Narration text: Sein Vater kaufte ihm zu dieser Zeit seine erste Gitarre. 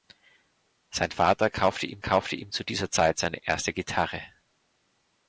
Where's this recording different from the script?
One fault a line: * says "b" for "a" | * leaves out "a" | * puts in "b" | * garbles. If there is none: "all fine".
* puts in "kaufte ihm"